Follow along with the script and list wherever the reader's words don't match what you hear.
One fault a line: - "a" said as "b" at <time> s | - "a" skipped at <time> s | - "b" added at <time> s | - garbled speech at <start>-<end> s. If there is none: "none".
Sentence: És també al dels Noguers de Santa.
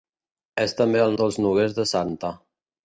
none